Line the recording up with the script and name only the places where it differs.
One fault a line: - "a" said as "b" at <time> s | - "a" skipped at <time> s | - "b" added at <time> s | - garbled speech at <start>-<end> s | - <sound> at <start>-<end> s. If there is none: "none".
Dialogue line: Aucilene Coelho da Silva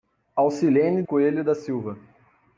none